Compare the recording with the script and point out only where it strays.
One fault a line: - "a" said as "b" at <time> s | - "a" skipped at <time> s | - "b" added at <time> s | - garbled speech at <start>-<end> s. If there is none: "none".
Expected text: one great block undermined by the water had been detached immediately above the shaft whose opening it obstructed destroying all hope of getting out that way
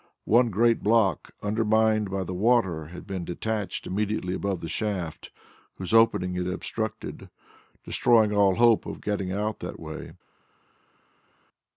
none